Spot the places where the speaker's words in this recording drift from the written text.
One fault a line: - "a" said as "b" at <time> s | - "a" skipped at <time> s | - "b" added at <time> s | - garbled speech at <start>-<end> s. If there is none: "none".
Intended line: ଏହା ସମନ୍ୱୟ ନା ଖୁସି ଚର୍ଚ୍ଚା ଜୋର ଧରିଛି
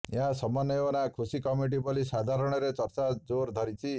- "କମିଟି ବୋଲି ସାଧାରଣରେ" added at 1.4 s